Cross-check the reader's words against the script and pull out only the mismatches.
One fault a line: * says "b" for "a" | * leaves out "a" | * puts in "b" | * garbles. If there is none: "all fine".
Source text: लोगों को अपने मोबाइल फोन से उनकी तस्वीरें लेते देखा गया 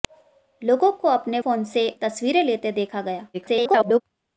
* leaves out "मोबाइल"
* leaves out "उनकी"
* garbles